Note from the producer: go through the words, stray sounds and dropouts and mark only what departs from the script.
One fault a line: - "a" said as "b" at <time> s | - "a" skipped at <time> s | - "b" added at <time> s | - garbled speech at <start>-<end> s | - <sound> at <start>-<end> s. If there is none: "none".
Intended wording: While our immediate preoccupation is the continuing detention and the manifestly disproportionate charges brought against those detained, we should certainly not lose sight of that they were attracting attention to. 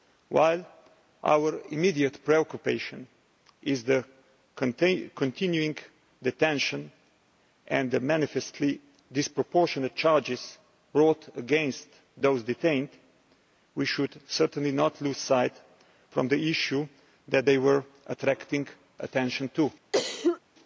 - "the issue" added at 16.3 s
- cough at 19.9-20.4 s